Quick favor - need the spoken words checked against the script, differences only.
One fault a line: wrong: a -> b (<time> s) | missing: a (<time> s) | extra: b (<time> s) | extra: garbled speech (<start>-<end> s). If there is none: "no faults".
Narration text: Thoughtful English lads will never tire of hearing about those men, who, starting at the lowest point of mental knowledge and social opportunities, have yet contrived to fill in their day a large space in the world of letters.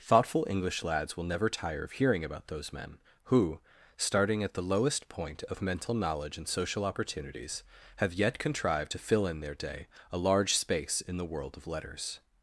no faults